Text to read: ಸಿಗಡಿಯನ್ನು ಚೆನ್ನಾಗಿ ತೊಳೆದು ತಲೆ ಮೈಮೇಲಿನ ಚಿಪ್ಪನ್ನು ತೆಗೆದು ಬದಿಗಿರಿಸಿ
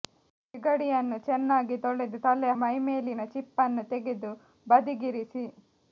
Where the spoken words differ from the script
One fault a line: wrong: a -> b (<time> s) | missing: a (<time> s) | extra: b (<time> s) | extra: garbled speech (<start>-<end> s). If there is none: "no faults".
no faults